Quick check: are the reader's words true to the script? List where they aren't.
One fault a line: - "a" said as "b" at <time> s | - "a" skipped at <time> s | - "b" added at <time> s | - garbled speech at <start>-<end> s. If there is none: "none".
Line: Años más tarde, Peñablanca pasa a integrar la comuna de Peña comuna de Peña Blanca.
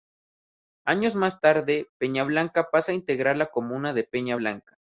- "comuna de Peña" skipped at 4.3 s